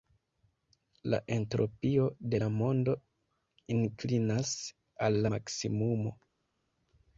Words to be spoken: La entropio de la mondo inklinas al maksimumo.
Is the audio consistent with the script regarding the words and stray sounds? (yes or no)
yes